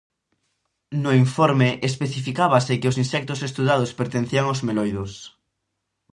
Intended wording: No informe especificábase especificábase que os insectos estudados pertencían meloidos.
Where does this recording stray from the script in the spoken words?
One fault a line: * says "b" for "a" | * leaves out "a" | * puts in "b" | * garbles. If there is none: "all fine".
* leaves out "especificábase"
* puts in "aos"